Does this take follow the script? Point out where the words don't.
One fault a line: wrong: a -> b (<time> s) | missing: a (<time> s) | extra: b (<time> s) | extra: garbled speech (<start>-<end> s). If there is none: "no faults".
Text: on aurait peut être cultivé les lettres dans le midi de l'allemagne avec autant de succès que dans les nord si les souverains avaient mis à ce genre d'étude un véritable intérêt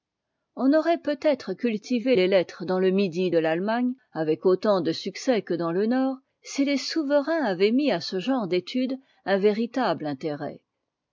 wrong: les -> le (5.7 s)